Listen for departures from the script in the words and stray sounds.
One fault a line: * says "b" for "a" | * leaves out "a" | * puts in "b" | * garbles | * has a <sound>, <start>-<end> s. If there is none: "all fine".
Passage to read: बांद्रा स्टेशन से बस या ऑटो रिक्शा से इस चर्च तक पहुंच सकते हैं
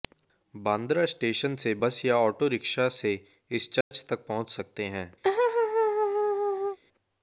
* has a dropout, 3.8-3.9 s
* has a laugh, 5.2-6.8 s